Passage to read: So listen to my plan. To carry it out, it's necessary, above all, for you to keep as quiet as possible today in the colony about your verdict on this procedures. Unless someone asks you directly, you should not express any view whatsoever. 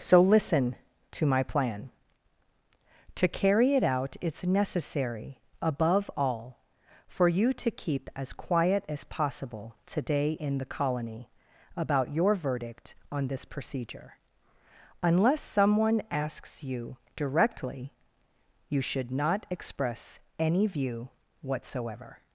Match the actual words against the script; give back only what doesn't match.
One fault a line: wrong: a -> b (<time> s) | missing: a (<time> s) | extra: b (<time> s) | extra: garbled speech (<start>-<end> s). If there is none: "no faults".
wrong: procedures -> procedure (13.4 s)